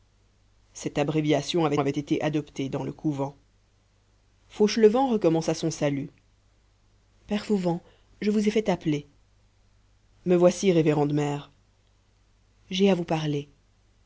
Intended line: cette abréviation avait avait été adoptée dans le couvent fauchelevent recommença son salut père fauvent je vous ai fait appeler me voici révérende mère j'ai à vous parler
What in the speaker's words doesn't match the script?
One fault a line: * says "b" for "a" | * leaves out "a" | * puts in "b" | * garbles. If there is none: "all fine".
all fine